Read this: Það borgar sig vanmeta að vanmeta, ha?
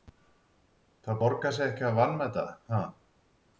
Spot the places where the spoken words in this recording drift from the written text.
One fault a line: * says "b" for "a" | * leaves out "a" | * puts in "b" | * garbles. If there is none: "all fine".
* says "ekki" for "vanmeta"